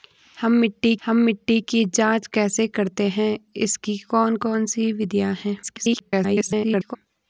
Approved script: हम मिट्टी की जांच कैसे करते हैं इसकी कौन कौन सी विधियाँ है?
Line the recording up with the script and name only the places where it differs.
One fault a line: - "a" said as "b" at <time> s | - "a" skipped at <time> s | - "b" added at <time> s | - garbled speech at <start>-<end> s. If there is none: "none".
- "हम मिट्टी" added at 1.0 s
- garbled speech at 5.6-7.0 s